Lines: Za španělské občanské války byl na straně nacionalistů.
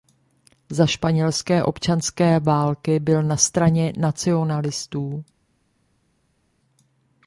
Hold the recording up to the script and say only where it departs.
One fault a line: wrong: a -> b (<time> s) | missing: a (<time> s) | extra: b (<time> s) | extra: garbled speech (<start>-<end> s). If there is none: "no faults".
no faults